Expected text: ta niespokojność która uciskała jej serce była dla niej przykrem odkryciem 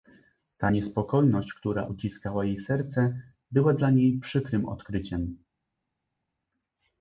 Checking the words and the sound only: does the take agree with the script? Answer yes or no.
yes